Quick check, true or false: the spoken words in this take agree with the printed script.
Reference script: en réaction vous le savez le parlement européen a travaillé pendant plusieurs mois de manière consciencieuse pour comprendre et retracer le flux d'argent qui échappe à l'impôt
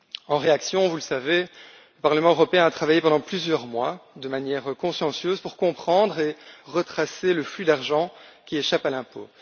true